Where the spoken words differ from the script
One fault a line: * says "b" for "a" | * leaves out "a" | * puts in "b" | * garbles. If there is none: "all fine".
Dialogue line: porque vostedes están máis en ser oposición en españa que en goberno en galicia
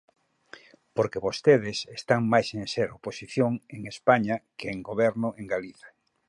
all fine